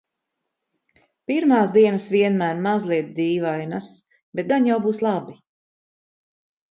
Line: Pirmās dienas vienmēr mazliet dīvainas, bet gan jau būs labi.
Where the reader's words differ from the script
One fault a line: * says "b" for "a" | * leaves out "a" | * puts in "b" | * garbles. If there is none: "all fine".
all fine